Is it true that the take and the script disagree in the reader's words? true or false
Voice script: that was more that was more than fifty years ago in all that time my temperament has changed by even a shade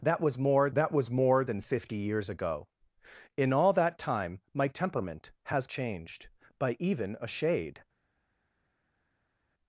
false